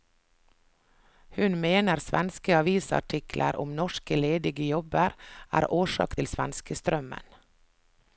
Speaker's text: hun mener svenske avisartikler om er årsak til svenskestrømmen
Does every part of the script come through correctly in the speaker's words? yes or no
no